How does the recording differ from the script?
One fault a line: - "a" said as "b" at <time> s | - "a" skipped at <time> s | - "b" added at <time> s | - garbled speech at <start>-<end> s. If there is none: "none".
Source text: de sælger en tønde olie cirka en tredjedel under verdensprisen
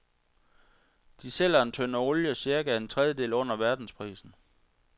none